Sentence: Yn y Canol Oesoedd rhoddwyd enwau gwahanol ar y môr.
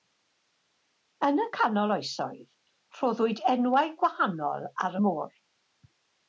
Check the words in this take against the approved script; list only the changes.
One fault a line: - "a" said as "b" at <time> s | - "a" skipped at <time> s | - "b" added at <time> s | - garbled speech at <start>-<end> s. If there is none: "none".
none